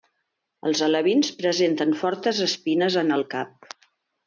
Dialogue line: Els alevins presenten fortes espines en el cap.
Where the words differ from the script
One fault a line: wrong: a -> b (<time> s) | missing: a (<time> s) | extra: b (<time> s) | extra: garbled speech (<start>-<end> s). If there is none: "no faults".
no faults